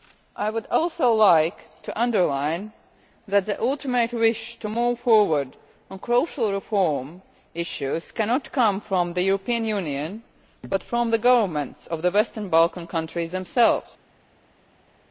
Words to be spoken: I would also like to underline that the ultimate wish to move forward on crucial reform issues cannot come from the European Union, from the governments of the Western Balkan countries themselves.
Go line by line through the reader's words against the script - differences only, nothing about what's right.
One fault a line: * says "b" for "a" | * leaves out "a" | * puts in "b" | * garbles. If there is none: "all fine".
* puts in "but"